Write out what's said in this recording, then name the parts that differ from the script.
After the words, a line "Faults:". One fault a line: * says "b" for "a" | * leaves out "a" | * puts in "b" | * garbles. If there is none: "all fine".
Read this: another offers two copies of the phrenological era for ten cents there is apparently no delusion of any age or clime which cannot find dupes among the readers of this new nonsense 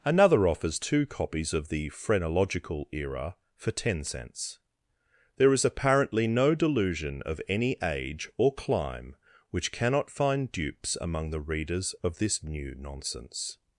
another offers two copies of the phrenological era for ten cents there is apparently no delusion of any age or clime which cannot find dupes among the readers of this new nonsense
Faults:
all fine